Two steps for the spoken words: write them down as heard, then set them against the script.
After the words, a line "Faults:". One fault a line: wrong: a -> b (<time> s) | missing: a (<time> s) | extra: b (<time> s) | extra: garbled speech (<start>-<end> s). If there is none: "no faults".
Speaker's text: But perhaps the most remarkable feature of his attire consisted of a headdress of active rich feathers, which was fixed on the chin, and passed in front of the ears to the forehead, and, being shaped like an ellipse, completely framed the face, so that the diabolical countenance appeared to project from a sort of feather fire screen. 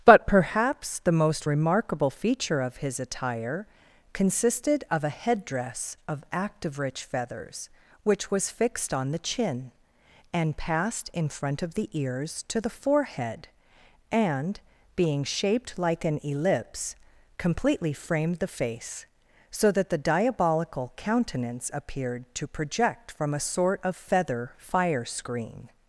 But perhaps the most remarkable feature of his attire consisted of a headdress of active rich feathers, which was fixed on the chin, and passed in front of the ears to the forehead, and, being shaped like an ellipse, completely framed the face, so that the diabolical countenance appeared to project from a sort of feather fire screen.
Faults:
no faults